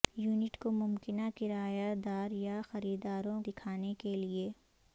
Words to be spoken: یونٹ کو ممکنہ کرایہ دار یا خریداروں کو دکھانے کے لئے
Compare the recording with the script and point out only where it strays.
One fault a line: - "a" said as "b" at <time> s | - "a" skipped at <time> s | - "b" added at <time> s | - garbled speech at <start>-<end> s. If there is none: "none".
- "کو" skipped at 3.4 s